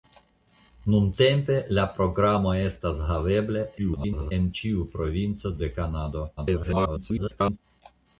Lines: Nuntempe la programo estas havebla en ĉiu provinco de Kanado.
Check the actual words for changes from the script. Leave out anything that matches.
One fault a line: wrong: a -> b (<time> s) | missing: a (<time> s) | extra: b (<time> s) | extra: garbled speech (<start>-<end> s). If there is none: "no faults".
extra: garbled speech (3.8-4.3 s)
extra: garbled speech (6.4-7.6 s)